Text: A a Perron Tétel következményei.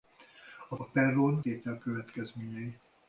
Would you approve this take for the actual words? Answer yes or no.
yes